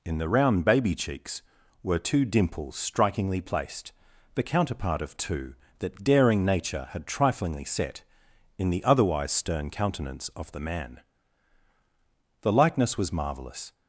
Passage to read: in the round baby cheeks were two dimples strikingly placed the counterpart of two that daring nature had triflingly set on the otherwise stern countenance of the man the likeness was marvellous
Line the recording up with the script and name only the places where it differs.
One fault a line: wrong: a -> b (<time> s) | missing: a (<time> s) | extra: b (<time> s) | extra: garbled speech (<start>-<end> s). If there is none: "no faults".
wrong: on -> in (8.6 s)